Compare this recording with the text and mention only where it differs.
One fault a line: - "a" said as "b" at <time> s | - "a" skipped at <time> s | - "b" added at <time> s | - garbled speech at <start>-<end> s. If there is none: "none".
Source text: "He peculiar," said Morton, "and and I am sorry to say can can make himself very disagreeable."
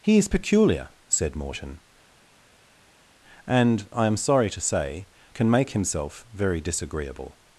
- "is" added at 0.2 s
- "and" skipped at 3.9 s
- "can" skipped at 5.5 s